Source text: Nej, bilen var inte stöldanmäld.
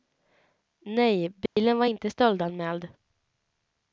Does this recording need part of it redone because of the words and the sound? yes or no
yes